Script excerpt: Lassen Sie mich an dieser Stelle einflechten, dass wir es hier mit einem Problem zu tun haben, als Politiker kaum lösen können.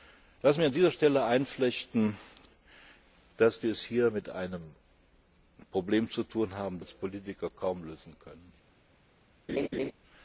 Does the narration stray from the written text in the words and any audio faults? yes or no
yes